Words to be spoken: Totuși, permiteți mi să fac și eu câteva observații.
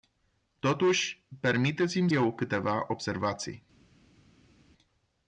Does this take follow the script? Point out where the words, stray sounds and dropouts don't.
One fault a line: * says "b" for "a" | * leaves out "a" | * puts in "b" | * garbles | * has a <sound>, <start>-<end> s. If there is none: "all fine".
* leaves out "să fac și"